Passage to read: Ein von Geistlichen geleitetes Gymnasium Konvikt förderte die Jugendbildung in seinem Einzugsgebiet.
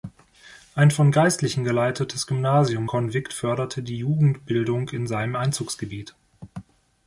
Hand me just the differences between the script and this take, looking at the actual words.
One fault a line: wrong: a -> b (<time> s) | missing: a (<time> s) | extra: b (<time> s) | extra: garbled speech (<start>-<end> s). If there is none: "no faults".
no faults